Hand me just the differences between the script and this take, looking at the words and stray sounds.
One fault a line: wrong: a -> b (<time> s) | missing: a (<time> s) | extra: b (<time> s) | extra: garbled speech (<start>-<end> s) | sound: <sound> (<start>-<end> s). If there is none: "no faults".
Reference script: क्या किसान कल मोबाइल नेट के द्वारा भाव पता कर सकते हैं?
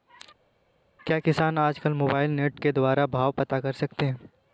extra: आज (1.6 s)